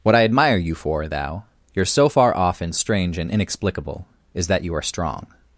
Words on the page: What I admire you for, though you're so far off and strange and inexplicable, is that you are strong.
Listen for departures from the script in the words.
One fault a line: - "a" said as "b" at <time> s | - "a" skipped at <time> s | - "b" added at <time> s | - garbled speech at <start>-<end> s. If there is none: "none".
- "though" said as "thou" at 1.1 s